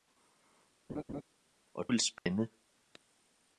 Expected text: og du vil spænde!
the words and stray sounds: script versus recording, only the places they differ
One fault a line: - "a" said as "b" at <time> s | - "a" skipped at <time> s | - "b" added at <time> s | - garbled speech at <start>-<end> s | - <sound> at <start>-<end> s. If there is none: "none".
- laugh at 0.9-1.2 s
- "du" skipped at 1.9 s
- dropout at 2.2-2.3 s